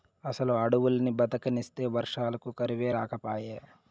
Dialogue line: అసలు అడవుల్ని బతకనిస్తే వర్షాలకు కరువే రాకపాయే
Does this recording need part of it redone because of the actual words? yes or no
no